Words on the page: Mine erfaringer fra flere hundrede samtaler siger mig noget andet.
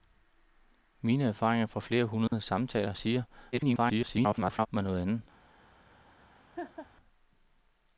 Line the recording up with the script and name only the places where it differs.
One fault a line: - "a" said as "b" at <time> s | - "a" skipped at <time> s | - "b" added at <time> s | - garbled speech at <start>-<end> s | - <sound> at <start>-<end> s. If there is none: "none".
- dropout at 2.3-2.3 s
- garbled speech at 3.5-4.7 s
- laugh at 6.6-6.9 s